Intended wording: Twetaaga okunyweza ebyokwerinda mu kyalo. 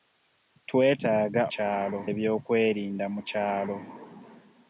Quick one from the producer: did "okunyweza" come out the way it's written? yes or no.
no